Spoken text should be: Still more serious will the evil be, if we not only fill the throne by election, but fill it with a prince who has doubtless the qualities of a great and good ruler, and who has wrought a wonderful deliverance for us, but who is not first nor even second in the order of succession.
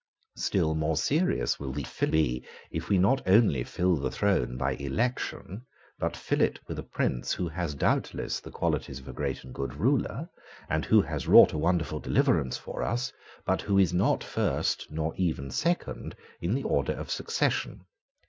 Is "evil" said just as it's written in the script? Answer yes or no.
no